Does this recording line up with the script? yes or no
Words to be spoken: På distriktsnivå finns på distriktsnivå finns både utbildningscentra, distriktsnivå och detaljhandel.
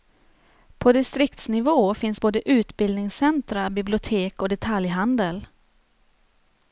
no